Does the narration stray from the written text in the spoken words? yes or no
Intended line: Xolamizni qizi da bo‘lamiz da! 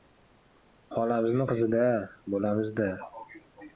no